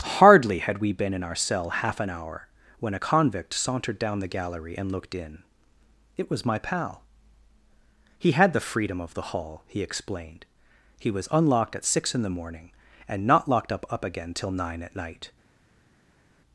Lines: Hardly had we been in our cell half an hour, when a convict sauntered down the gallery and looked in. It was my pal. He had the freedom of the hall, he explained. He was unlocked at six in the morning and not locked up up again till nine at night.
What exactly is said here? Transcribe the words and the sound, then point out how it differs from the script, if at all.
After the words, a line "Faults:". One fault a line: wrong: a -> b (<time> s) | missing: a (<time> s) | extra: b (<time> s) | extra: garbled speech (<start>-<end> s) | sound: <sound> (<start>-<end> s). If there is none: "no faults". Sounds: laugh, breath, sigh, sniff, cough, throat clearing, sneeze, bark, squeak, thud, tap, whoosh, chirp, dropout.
Hardly had we been in our cell half an hour, when a convict sauntered down the gallery and looked in. It was my pal. He had the freedom of the hall, he explained. He was unlocked at six in the morning and not locked up up again till nine at night.
Faults:
no faults